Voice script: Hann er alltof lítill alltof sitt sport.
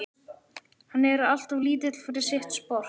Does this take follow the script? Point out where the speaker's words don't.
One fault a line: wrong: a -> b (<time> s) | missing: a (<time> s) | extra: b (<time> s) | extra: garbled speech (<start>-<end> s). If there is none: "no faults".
wrong: alltof -> fyrir (2.0 s)